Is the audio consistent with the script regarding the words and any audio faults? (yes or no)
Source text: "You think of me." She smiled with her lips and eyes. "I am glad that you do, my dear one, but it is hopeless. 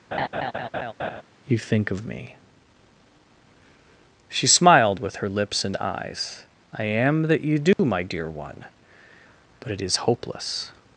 no